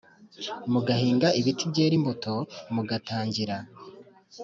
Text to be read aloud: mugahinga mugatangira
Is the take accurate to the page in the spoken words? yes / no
no